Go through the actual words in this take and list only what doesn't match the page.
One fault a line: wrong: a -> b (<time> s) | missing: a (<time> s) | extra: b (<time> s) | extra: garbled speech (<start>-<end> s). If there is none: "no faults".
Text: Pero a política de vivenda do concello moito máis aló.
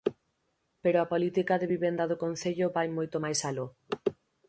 extra: vai (2.8 s)